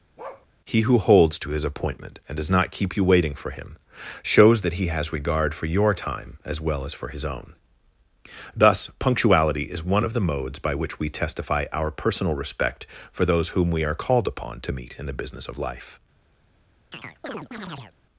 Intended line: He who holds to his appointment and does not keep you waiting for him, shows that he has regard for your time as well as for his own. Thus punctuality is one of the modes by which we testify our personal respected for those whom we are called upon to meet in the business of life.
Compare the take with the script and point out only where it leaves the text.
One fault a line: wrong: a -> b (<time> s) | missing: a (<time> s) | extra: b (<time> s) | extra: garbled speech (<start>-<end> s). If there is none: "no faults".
wrong: respected -> respect (12.3 s)